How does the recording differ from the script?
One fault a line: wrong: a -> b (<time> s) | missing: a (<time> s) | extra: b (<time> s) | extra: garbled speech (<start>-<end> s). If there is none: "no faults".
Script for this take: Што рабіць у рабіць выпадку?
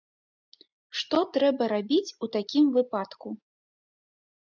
extra: трэба (1.4 s)
wrong: рабіць -> такім (2.4 s)